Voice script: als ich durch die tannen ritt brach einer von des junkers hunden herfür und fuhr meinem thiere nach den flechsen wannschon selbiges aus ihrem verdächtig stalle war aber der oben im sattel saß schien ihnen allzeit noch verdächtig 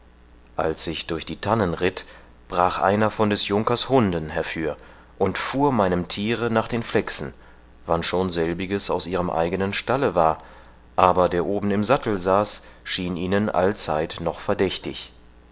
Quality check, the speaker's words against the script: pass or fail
fail